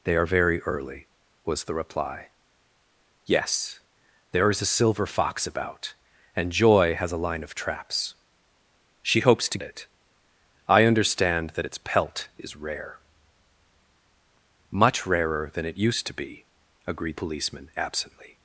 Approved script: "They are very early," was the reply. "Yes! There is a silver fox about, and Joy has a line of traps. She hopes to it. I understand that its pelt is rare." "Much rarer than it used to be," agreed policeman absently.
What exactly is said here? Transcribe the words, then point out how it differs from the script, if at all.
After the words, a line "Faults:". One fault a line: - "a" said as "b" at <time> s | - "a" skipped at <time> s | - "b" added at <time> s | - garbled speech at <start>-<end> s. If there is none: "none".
"They are very early," was the reply. "Yes! There is a silver fox about, and Joy has a line of traps. She hopes to it. I understand that its pelt is rare." "Much rarer than it used to be," agreed policeman absently.
Faults:
none